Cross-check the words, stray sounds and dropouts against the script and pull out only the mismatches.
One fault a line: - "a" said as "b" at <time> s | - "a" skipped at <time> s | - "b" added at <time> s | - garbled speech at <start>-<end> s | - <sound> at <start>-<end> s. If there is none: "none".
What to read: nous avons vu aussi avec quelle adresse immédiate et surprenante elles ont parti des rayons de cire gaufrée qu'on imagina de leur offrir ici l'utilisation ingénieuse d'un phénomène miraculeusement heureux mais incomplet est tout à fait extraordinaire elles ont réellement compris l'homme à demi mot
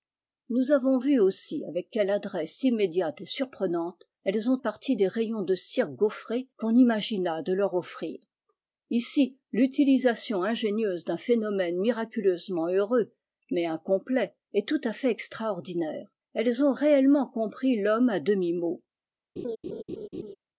- laugh at 19.4-20.4 s